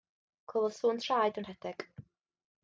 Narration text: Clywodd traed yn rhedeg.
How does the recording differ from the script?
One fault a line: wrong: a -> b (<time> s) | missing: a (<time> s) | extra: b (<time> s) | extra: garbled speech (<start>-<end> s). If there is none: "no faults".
extra: sŵn (0.8 s)